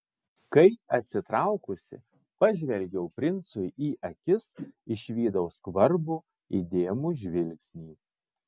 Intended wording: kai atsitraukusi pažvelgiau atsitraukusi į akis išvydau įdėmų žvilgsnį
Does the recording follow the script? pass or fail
fail